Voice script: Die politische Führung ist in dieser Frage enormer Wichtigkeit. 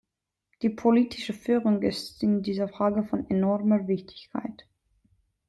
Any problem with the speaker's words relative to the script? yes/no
yes